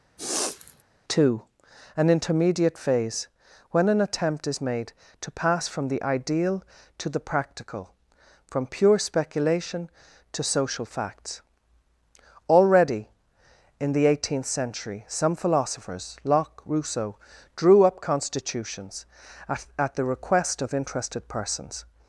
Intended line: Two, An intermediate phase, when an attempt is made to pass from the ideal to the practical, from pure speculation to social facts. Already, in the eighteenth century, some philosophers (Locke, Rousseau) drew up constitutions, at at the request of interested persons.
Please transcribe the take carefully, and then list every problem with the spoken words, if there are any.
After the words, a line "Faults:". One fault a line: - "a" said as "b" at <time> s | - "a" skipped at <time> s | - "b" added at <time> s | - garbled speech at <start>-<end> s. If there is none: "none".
Two, An intermediate phase, when an attempt is made to pass from the ideal to the practical, from pure speculation to social facts. Already, in the eighteenth century, some philosophers (Locke, Rousseau) drew up constitutions, at at the request of interested persons.
Faults:
none